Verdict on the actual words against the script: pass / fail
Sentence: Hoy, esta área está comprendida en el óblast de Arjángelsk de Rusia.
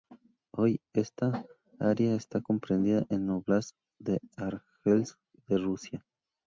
pass